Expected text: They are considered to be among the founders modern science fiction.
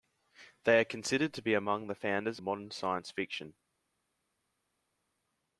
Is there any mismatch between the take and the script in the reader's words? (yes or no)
no